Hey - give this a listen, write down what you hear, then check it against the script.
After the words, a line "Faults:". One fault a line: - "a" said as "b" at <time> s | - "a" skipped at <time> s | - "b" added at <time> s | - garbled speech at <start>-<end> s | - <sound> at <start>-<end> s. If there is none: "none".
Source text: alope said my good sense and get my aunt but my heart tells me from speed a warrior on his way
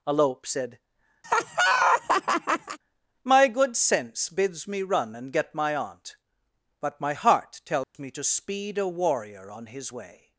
alope said my good sense bids me run and get my aunt but my heart tells me to speed a warrior on his way
Faults:
- laugh at 1.2-2.8 s
- "bids me run" added at 4.3 s
- dropout at 7.8-7.9 s
- "from" said as "to" at 8.1 s